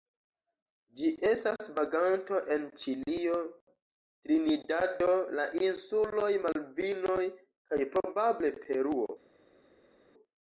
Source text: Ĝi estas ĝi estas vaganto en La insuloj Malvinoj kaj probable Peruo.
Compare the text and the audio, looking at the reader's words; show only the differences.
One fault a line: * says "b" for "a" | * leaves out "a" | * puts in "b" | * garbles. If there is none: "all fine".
* says "vaganto en Ĉilio Trinidado" for "ĝi estas vaganto en"